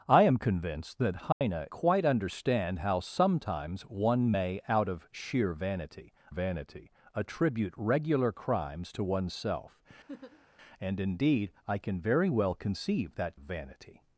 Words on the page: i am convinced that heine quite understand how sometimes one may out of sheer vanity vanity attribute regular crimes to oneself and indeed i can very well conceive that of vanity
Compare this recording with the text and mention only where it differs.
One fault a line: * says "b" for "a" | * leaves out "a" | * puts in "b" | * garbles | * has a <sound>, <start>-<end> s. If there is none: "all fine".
* has a dropout, 1.3-1.4 s
* has a laugh, 10.1-10.5 s